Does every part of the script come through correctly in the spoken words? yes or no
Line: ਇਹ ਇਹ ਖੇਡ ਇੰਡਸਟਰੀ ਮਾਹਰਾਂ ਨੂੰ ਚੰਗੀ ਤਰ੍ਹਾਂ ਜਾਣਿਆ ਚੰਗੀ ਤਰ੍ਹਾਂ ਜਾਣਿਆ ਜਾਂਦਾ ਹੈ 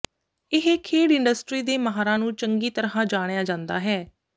no